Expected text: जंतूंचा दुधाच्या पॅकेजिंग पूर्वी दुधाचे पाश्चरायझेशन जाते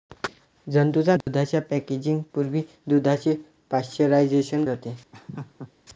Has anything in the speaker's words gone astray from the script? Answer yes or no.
no